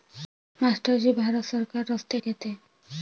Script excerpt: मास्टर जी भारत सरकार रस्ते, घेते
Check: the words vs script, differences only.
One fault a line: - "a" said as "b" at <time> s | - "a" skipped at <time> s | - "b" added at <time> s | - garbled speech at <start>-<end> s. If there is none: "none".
none